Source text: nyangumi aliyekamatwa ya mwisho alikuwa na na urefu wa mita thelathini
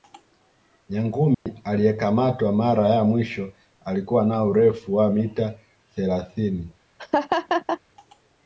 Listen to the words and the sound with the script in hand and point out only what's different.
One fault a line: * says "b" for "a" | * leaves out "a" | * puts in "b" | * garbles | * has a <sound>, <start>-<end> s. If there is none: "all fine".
* has a dropout, 1.3-1.5 s
* puts in "mara"
* leaves out "na"
* has a laugh, 7.0-7.8 s